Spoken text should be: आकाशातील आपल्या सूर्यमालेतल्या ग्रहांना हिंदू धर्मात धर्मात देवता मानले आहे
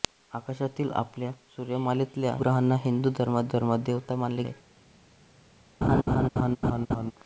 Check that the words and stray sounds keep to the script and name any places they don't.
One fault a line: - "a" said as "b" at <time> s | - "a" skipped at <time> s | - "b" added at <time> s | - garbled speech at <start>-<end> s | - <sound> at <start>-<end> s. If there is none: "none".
- laugh at 5.8-7.1 s